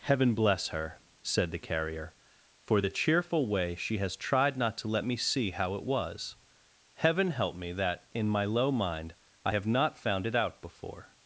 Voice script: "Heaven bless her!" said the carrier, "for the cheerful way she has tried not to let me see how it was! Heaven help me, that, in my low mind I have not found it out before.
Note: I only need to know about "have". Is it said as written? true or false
true